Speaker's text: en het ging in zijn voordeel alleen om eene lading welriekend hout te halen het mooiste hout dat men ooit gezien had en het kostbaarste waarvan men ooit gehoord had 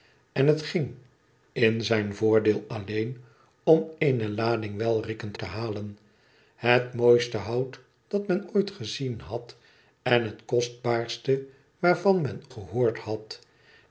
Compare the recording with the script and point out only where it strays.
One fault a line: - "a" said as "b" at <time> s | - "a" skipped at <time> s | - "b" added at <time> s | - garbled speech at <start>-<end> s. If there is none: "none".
- "hout" skipped at 5.4 s
- "ooit" skipped at 12.4 s